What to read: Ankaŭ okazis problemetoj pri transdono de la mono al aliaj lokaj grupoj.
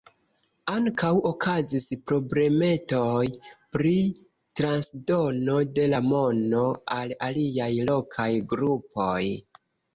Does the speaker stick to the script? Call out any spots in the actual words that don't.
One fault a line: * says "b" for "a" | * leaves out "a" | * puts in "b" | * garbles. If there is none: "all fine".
all fine